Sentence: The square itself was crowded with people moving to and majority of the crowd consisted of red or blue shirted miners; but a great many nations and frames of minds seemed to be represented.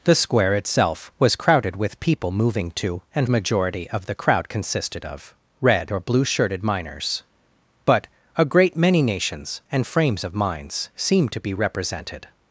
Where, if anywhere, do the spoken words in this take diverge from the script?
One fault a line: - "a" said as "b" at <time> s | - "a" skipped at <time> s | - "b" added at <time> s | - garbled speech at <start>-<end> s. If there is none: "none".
none